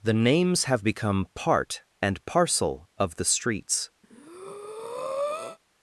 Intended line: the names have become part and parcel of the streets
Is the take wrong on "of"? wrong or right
right